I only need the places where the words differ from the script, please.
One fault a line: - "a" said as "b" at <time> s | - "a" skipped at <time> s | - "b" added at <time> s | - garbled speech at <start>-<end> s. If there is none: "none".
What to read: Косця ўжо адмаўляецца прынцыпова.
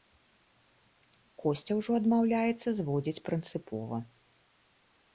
- "зводзіць" added at 2.8 s